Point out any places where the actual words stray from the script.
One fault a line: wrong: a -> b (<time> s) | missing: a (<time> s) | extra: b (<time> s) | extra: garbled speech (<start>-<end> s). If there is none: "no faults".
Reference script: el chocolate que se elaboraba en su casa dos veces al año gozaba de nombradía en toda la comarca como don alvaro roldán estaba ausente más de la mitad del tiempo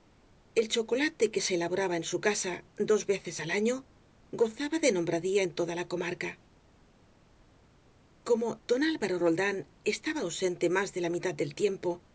no faults